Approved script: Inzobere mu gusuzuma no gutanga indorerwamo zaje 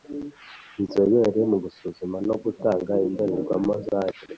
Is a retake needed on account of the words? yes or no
no